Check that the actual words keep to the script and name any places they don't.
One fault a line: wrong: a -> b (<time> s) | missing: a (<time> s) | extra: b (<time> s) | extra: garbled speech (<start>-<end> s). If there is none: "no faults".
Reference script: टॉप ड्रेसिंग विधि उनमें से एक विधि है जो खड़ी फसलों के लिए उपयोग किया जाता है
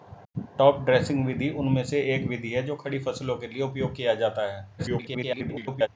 extra: garbled speech (4.8-5.9 s)